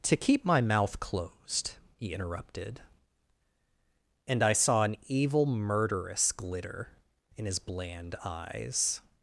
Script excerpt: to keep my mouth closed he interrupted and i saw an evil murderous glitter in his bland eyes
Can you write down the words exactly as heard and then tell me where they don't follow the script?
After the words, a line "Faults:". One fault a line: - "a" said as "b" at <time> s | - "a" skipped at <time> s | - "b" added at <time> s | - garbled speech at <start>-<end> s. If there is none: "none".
to keep my mouth closed he interrupted and i saw an evil murderous glitter in his bland eyes
Faults:
none